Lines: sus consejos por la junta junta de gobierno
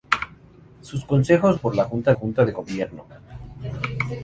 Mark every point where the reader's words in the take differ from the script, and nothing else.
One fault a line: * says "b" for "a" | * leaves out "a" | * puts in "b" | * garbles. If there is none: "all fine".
all fine